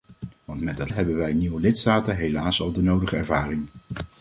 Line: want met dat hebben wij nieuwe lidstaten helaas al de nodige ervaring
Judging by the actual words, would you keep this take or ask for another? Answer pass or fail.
pass